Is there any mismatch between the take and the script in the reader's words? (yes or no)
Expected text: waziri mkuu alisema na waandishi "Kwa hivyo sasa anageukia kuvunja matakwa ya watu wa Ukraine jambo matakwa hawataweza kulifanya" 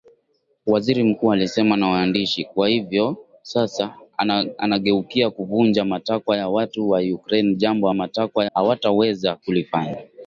no